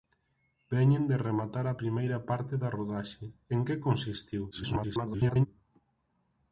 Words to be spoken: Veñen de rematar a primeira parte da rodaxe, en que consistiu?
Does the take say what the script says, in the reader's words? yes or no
no